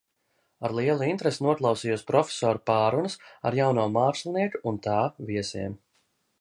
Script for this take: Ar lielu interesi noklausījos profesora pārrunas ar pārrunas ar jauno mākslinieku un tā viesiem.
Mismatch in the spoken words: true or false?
true